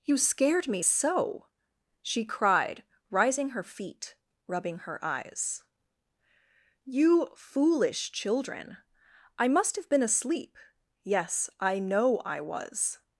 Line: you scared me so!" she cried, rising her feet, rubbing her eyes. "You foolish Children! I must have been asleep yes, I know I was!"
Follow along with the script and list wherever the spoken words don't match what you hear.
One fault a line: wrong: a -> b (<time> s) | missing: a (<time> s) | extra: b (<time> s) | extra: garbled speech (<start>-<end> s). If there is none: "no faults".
no faults